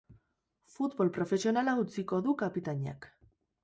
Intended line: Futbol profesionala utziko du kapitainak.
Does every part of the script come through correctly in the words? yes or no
yes